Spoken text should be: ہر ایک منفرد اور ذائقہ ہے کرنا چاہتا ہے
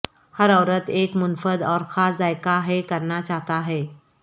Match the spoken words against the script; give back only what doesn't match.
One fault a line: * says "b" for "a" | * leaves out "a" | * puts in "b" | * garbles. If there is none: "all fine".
* puts in "عورت"
* puts in "خاص"